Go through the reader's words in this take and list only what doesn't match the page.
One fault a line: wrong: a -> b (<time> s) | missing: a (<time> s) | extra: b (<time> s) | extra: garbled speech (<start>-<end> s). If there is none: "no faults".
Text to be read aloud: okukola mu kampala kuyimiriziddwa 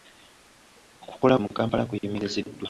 no faults